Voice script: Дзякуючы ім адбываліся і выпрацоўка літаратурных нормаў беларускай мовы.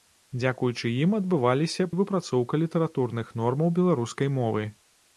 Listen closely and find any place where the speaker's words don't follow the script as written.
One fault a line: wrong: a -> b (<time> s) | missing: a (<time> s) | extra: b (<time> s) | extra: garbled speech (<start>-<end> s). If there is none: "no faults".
no faults